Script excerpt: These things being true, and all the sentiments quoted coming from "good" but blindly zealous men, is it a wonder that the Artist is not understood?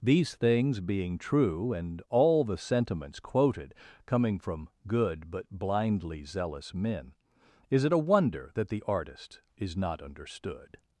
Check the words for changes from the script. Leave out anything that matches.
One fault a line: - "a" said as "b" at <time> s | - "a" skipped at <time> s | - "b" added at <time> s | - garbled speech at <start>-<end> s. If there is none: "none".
none